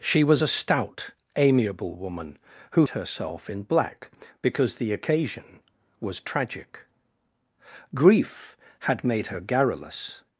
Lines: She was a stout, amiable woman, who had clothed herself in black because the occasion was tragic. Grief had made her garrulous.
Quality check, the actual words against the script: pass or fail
fail